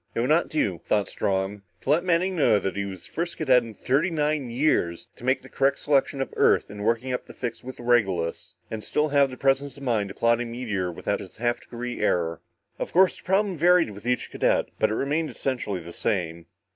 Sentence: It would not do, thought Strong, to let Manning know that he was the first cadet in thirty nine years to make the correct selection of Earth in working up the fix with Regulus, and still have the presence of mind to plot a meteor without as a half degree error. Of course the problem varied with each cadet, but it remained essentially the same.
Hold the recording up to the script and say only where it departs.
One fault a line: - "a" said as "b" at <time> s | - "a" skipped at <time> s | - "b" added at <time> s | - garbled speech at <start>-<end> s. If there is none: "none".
none